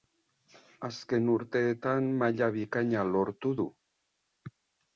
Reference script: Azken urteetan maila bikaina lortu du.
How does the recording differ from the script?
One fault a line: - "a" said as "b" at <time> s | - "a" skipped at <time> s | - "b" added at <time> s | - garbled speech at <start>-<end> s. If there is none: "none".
none